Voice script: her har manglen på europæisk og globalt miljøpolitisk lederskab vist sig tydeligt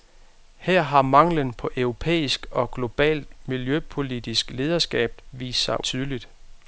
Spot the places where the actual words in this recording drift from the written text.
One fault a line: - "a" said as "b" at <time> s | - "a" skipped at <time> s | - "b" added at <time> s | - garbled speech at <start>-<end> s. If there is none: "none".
none